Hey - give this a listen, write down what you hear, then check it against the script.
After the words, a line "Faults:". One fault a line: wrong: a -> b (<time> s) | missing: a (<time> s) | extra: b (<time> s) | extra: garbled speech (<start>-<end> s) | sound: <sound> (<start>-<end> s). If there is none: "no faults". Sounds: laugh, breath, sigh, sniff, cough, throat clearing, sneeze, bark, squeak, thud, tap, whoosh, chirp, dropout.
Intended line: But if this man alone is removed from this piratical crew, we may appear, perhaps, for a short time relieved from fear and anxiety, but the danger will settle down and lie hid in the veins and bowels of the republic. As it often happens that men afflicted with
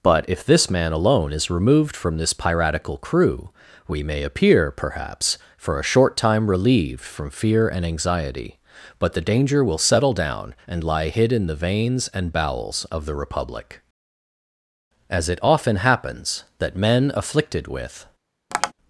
But if this man alone is removed from this piratical crew, we may appear, perhaps, for a short time relieved from fear and anxiety, but the danger will settle down and lie hid in the veins and bowels of the republic. As it often happens that men afflicted with
Faults:
sound: tap (18.5-18.7 s)